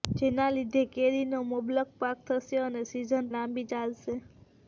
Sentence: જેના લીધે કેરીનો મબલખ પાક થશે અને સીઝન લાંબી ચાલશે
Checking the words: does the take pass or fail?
pass